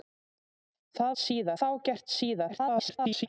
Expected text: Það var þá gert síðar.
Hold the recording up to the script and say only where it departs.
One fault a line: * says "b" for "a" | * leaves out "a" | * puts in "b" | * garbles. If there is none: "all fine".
* says "síðar" for "var"
* garbles